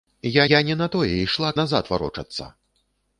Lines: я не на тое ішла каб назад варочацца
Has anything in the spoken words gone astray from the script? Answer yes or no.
yes